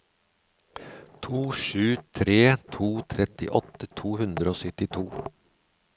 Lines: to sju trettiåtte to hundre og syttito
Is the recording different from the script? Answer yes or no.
yes